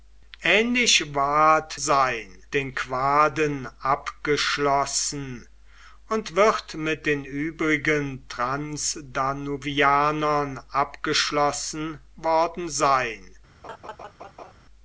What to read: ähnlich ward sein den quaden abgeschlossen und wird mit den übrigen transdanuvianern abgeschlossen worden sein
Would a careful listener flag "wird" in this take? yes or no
no